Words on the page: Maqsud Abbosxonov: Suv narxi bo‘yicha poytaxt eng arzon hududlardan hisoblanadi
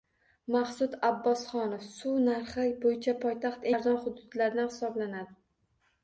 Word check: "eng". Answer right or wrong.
wrong